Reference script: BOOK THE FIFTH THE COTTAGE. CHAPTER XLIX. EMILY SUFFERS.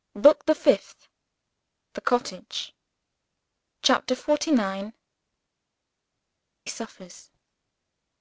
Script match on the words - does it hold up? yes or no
no